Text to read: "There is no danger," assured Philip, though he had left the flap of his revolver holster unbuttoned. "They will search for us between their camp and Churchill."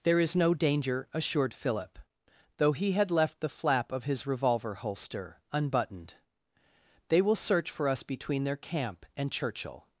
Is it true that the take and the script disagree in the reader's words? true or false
false